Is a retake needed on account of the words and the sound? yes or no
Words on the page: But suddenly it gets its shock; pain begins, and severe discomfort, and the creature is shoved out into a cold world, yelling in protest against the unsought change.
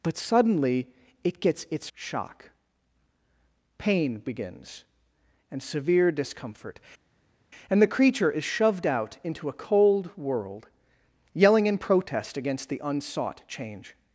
no